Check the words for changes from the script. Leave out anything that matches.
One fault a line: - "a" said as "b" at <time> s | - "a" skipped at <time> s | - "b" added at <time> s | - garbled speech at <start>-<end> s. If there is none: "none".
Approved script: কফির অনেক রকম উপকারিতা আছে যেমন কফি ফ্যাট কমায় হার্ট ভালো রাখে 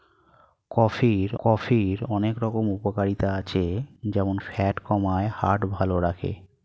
- "কফির" added at 1.4 s
- "কফি" skipped at 4.3 s